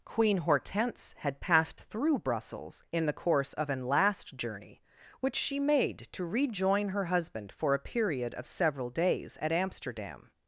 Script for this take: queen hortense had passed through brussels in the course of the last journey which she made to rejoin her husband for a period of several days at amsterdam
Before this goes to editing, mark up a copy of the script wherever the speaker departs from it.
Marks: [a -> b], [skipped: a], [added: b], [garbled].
queen hortense had passed through brussels in the course of [the -> an] last journey which she made to rejoin her husband for a period of several days at amsterdam